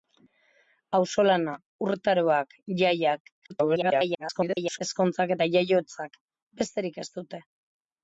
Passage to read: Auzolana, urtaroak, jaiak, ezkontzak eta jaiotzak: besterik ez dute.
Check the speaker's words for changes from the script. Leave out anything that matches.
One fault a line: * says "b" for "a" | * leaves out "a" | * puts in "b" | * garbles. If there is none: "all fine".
* garbles